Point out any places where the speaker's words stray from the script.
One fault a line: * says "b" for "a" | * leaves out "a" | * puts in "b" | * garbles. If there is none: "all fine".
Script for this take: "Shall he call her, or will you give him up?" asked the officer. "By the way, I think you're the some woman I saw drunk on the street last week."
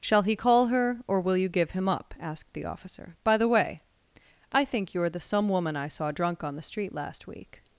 all fine